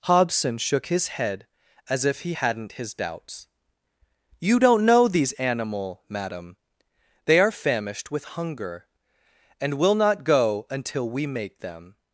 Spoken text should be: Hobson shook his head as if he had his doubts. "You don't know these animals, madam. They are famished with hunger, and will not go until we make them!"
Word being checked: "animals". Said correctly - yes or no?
no